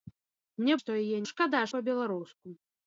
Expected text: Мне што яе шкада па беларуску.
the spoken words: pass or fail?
pass